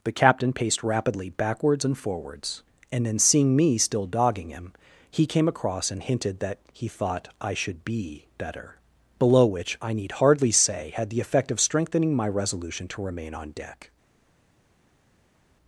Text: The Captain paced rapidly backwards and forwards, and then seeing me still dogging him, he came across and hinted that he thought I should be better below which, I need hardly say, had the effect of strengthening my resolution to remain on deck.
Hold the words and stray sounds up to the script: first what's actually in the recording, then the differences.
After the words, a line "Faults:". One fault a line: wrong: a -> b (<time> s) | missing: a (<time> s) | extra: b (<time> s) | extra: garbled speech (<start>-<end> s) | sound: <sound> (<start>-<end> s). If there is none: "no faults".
The Captain paced rapidly backwards and forwards, and then seeing me still dogging him, he came across and hinted that he thought I should be better below which, I need hardly say, had the effect of strengthening my resolution to remain on deck.
Faults:
no faults